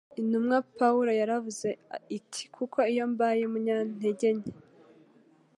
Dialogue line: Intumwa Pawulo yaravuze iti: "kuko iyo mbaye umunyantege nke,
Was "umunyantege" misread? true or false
false